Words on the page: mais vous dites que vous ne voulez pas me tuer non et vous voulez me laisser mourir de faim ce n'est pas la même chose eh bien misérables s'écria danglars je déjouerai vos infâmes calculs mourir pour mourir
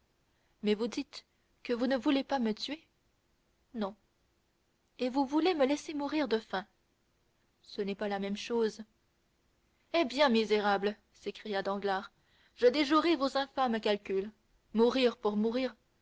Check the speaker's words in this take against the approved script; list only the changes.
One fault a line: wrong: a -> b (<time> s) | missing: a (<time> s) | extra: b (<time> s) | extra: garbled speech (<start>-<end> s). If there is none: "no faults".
no faults